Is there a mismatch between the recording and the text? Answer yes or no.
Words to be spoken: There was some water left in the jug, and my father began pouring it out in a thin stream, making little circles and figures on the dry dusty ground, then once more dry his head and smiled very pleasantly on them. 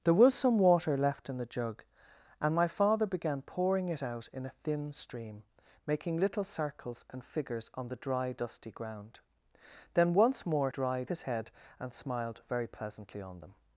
no